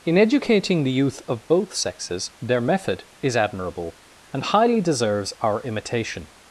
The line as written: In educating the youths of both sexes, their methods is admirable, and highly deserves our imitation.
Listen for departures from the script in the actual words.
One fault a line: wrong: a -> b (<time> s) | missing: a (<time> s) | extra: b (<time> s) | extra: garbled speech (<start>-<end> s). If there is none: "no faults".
wrong: youths -> youth (0.9 s)
wrong: methods -> method (2.6 s)